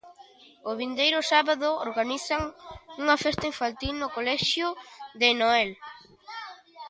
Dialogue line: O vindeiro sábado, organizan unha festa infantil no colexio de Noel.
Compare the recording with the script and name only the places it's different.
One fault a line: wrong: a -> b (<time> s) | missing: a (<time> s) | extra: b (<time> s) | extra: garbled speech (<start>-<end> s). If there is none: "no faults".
no faults